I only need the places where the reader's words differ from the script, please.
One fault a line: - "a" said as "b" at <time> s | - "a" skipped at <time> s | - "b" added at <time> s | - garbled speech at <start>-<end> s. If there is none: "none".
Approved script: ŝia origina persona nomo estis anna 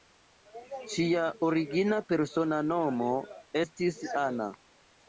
none